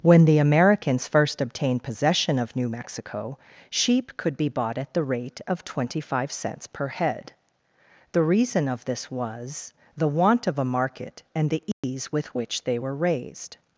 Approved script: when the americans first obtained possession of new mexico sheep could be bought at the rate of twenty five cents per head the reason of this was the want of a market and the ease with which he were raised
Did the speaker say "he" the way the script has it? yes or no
no